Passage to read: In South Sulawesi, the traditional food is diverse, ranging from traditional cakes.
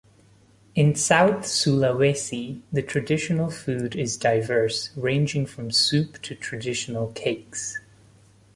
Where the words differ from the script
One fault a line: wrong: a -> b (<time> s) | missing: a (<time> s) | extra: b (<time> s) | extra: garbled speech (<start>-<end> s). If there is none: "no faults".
extra: soup to (5.7 s)